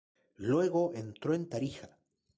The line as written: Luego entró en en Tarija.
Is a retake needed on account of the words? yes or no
yes